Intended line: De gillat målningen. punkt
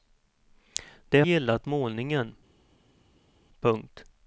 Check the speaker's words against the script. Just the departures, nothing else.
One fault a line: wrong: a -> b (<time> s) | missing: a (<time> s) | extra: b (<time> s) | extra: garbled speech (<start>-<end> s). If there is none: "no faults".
no faults